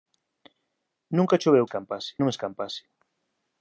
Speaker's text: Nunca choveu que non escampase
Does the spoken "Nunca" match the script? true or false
true